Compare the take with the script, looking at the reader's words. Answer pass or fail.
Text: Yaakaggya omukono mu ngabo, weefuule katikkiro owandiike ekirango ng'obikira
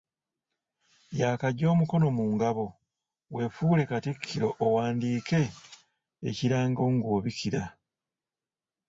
pass